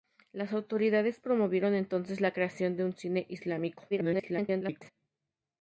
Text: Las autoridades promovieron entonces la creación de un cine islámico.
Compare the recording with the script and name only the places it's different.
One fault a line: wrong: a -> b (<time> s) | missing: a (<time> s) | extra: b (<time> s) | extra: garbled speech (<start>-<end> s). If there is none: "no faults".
extra: garbled speech (3.9-4.9 s)